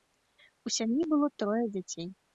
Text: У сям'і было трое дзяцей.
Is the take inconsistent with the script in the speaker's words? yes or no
no